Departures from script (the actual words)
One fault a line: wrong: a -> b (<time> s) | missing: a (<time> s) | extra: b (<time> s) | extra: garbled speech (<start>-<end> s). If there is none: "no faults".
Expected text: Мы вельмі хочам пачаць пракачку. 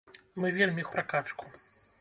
missing: хочам пачаць (0.8 s)